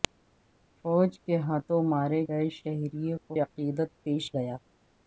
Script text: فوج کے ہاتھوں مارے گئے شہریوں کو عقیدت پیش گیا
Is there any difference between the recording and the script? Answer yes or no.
no